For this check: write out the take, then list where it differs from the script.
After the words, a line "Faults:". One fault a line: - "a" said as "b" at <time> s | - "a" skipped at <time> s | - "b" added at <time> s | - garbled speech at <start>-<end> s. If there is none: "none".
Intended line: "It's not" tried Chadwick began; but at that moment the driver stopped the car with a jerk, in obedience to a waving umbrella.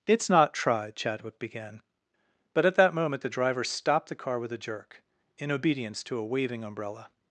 "It's not" tried Chadwick began; but at that moment the driver stopped the car with a jerk, in obedience to a waving umbrella.
Faults:
none